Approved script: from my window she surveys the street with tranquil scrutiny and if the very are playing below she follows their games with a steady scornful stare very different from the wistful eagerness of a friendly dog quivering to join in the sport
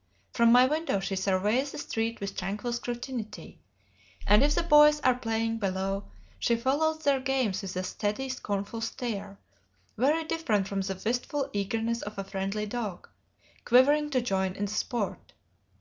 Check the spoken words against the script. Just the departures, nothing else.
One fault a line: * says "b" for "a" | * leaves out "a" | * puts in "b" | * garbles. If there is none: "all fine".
* says "boys" for "very"